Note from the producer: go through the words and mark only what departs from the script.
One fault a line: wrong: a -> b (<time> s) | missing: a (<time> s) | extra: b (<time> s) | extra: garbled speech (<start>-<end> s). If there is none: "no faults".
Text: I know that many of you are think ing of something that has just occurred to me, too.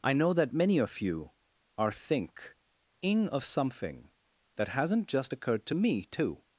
wrong: has -> hasn't (4.7 s)